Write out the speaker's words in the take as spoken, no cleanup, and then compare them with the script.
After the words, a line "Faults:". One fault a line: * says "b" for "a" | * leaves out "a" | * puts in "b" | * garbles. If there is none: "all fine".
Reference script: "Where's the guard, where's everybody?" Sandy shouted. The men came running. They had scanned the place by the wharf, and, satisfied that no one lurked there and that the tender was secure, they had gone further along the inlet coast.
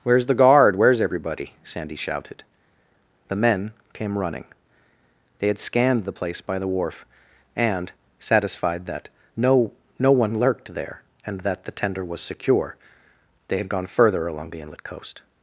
"Where's the guard, where's everybody?" Sandy shouted. The men came running. They had scanned the place by the wharf, and, satisfied that no no one lurked there and that the tender was secure, they had gone further along the inlet coast.
Faults:
* puts in "no"